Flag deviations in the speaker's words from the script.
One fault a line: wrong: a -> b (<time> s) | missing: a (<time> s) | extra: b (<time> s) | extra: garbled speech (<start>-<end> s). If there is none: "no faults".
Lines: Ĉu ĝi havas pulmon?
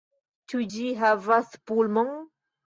no faults